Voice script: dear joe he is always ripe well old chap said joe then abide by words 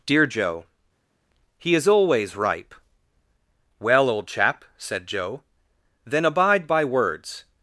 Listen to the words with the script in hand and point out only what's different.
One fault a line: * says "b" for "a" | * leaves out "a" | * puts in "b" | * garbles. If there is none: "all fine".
all fine